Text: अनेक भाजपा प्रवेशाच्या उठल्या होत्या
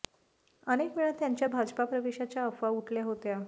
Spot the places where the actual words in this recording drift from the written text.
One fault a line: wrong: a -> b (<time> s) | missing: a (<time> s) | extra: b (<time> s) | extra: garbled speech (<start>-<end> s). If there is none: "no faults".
extra: वेळा त्यांच्या (1.0 s)
extra: अफवा (2.4 s)